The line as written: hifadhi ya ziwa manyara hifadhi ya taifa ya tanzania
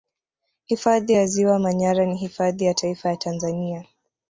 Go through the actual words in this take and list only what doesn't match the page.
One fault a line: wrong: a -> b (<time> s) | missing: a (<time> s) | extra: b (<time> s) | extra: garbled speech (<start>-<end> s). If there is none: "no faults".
extra: ni (2.1 s)